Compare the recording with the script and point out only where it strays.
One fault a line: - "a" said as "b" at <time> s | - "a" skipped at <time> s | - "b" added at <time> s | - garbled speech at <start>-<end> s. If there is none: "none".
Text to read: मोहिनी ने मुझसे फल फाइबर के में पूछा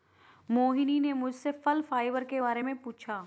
- "बारे" added at 2.4 s